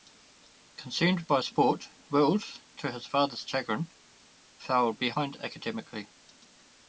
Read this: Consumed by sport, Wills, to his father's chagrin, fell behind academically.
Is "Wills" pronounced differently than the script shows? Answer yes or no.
no